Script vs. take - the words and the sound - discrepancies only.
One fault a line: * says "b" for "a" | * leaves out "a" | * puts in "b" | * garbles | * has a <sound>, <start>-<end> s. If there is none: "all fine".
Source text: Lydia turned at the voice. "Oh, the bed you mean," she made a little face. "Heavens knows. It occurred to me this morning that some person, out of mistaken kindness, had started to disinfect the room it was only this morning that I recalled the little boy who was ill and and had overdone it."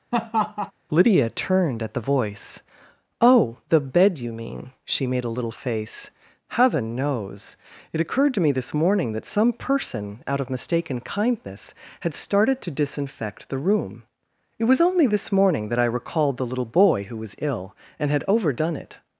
* has a laugh, 0.1-0.7 s
* says "Heaven" for "Heavens"
* leaves out "and"